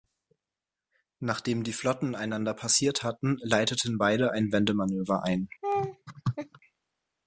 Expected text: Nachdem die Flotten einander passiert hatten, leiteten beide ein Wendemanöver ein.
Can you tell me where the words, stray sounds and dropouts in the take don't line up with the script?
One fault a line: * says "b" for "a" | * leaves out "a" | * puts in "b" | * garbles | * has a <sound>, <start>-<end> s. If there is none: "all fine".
* has a laugh, 5.6-6.6 s